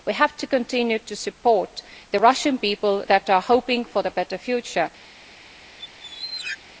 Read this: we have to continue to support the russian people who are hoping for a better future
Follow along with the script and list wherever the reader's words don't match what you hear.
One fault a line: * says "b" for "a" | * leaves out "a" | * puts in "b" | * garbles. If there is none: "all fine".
all fine